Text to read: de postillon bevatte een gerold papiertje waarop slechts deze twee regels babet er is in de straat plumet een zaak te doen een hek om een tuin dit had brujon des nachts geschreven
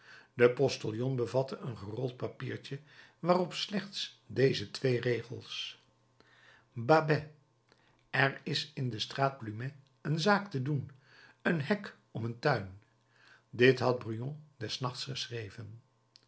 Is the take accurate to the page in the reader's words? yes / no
yes